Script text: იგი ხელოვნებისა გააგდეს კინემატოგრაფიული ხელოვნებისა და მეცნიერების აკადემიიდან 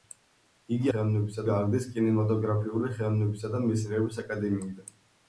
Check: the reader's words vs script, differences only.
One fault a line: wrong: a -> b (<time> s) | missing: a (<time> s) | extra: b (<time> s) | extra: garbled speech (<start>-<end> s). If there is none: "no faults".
no faults